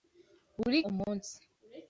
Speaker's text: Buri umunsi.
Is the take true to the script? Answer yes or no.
yes